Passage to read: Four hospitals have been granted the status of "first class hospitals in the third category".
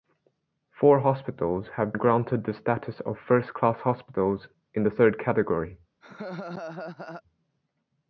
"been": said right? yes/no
no